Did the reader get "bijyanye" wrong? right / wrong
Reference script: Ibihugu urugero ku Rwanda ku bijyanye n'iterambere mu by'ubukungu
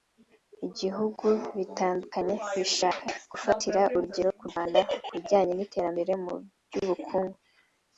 right